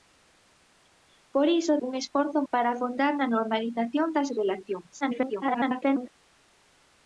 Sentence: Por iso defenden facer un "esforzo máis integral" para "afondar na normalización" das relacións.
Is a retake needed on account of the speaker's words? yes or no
yes